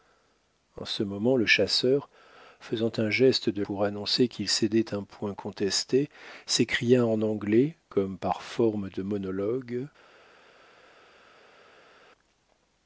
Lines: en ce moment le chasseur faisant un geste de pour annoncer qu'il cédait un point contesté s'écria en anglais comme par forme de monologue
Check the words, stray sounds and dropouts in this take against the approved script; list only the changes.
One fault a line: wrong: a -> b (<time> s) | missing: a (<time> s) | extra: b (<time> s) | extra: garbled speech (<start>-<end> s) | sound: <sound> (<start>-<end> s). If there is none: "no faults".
no faults